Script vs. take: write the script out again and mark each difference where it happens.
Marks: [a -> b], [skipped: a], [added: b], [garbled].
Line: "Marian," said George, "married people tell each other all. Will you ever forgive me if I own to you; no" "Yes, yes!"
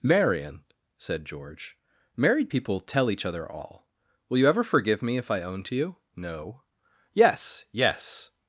"Marian," said George, "married people tell each other all. Will you ever forgive me if I own to you; no" "Yes, yes!"